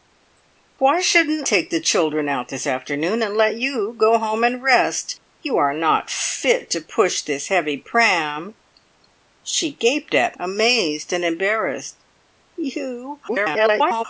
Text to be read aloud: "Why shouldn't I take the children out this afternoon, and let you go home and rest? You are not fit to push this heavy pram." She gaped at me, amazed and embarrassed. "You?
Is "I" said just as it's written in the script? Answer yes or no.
no